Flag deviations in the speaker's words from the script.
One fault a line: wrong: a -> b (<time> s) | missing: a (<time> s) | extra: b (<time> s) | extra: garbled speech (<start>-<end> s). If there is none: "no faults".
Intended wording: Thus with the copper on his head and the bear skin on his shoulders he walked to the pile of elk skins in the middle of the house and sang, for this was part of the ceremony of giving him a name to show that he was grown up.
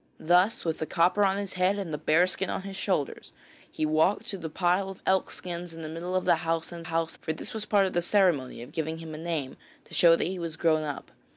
wrong: sang -> house (6.8 s)